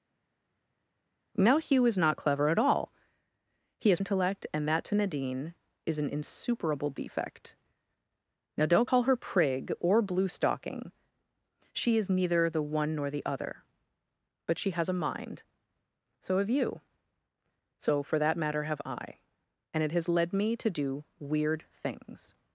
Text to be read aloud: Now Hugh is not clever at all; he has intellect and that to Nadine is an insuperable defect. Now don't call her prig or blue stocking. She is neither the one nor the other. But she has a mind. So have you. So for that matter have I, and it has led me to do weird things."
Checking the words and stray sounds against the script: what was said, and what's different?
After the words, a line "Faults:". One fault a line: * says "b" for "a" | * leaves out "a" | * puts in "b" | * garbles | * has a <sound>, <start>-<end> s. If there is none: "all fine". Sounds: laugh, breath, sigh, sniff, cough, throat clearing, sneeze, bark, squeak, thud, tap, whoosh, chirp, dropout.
Now Hugh is not clever at all; he has intellect and that to Nadine is an insuperable defect. Now don't call her prig or blue stocking. She is neither the one nor the other. But she has a mind. So have you. So for that matter have I, and it has led me to do weird things."
Faults:
all fine